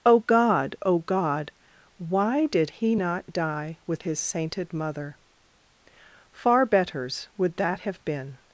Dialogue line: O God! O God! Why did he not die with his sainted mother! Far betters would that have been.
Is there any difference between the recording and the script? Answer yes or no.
no